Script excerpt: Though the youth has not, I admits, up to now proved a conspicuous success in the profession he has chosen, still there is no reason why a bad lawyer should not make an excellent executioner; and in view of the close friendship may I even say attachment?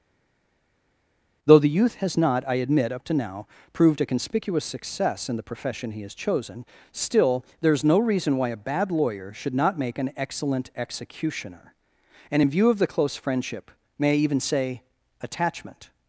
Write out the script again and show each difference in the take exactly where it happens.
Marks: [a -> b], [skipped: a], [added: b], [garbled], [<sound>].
Though the youth has not, I [admits, -> admit] up to now proved a conspicuous success in the profession he has chosen, still there is no reason why a bad lawyer should not make an excellent executioner; and in view of the close friendship may I even say attachment?